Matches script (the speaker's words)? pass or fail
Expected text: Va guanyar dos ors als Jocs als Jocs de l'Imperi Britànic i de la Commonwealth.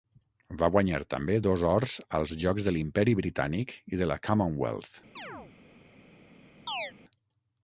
fail